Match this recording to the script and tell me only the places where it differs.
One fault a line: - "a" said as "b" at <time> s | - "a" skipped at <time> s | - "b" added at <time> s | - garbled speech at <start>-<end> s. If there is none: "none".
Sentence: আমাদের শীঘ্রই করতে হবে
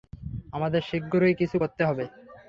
- "কিছু" added at 1.4 s